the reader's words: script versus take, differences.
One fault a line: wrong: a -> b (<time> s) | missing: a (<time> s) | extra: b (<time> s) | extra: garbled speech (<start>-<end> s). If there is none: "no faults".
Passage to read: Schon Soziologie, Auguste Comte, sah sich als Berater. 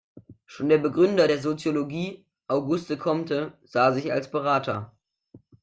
extra: der Begründer der (0.7 s)